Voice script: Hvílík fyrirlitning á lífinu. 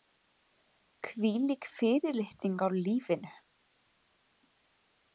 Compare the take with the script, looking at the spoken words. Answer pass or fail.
pass